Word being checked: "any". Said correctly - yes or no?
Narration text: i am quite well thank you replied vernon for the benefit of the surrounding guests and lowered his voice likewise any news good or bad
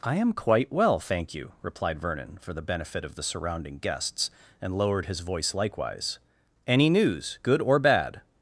yes